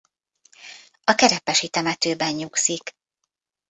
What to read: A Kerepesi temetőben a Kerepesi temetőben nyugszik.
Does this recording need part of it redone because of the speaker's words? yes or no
yes